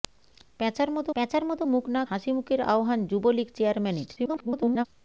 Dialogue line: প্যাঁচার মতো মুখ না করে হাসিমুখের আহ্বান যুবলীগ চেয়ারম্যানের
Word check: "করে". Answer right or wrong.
wrong